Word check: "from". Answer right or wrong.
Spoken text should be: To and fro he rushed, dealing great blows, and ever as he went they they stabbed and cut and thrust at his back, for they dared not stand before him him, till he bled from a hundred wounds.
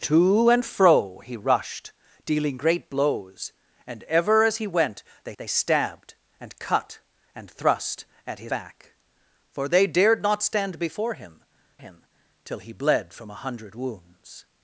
right